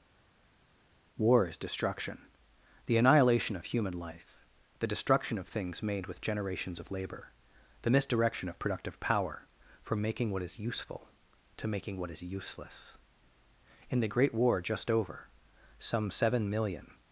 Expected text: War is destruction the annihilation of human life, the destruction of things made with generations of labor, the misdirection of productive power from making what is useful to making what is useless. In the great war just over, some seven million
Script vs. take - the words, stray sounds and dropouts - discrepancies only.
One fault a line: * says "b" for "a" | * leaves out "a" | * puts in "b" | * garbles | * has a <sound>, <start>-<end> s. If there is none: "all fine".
all fine